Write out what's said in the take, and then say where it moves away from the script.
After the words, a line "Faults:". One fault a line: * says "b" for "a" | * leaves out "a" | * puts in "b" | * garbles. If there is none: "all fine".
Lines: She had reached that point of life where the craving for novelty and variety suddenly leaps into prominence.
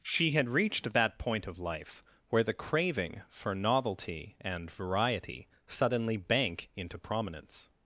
She had reached that point of life where the craving for novelty and variety suddenly bank into prominence.
Faults:
* says "bank" for "leaps"